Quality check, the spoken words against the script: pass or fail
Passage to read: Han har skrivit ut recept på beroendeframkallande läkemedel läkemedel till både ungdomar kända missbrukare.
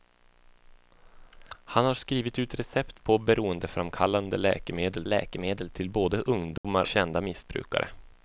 pass